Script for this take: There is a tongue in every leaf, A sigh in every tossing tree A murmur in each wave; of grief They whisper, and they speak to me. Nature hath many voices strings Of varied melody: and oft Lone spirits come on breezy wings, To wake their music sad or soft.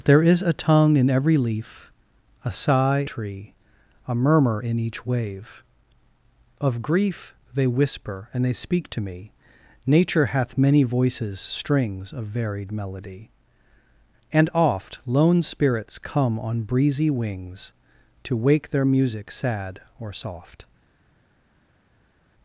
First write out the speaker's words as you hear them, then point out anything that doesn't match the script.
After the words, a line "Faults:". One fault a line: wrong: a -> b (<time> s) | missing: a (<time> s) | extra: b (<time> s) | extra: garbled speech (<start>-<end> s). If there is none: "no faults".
There is a tongue in every leaf, A sigh tree A murmur in each wave; of grief They whisper, and they speak to me. Nature hath many voices strings Of varied melody: and oft Lone spirits come on breezy wings, To wake their music sad or soft.
Faults:
missing: in every tossing (3.0 s)